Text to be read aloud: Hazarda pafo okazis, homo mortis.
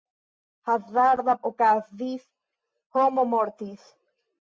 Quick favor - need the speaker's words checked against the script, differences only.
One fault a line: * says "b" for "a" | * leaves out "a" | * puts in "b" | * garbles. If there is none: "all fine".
* leaves out "pafo"